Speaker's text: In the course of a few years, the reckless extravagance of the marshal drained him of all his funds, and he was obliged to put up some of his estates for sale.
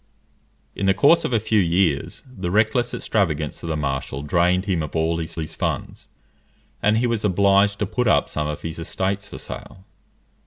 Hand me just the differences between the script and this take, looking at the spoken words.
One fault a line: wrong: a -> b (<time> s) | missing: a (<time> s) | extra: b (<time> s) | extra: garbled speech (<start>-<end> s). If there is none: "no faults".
extra: his (5.4 s)